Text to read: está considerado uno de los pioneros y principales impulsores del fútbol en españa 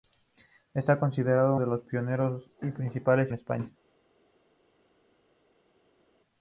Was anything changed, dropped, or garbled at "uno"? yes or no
yes